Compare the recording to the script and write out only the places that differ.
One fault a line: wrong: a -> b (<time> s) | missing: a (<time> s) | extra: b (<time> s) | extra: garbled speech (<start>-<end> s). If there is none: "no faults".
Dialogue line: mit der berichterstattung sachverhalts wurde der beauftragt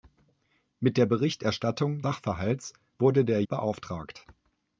no faults